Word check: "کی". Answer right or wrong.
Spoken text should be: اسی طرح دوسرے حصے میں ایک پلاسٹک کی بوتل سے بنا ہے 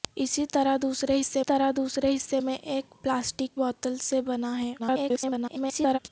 wrong